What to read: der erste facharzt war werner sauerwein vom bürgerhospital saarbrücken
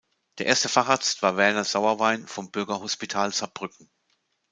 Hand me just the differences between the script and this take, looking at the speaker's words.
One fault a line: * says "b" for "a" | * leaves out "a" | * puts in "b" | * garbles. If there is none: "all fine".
all fine